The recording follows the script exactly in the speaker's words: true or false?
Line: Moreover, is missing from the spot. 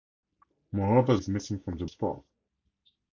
true